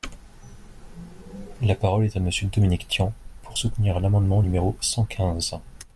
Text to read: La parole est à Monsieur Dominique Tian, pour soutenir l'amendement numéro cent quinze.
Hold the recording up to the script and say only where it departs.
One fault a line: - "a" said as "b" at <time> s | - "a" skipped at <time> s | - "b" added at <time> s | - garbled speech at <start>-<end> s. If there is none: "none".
none